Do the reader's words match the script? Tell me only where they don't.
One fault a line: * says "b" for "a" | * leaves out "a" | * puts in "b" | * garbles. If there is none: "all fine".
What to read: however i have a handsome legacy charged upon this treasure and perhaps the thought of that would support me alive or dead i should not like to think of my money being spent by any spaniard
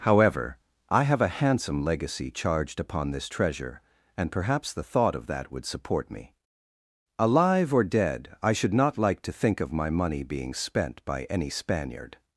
all fine